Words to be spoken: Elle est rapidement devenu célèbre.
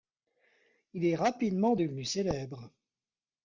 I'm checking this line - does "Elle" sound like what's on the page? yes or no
no